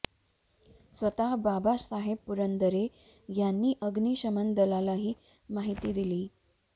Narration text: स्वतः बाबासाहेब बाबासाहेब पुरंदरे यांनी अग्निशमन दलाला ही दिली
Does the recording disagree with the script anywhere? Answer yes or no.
yes